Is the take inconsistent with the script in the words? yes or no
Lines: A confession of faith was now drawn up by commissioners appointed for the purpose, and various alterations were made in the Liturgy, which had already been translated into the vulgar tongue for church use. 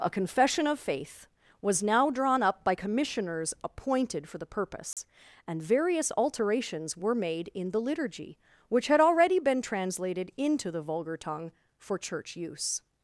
no